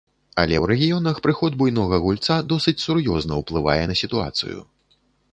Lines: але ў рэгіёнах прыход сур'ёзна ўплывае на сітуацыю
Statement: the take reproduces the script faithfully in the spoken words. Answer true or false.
false